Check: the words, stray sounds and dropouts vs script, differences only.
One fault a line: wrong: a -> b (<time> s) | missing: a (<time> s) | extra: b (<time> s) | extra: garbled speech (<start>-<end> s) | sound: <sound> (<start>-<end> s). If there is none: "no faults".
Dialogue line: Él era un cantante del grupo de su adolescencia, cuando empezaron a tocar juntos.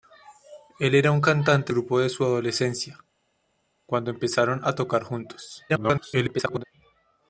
missing: del (1.7 s)
extra: garbled speech (5.7-6.6 s)